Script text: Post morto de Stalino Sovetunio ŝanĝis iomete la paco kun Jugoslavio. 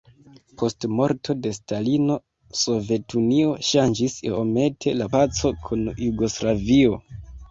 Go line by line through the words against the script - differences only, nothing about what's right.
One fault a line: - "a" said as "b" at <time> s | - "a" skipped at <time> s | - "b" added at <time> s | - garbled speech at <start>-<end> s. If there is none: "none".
none